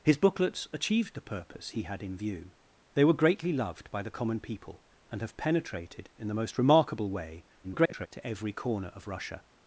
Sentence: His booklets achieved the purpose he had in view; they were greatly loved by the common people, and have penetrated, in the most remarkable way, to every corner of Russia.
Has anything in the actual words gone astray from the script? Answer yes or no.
yes